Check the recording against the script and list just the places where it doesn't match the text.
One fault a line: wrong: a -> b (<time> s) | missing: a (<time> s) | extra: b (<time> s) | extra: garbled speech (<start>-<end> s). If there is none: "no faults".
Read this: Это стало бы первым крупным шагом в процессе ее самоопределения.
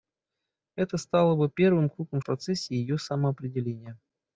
missing: шагом (2.2 s)